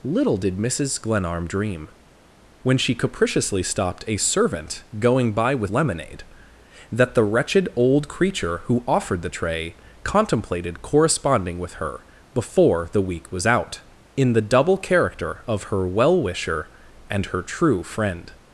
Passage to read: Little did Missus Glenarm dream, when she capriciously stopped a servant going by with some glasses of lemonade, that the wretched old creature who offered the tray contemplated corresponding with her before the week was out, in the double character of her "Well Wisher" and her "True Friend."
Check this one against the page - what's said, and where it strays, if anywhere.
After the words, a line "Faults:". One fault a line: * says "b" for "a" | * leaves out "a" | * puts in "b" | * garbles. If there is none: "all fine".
Little did Missus Glenarm dream, when she capriciously stopped a servant going by with lemonade, that the wretched old creature who offered the tray contemplated corresponding with her before the week was out, in the double character of her "Well Wisher" and her "True Friend."
Faults:
* leaves out "some glasses of"